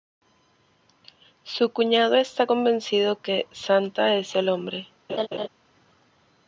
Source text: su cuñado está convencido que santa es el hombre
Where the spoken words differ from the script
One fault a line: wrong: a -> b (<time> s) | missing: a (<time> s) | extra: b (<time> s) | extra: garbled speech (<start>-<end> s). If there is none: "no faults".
no faults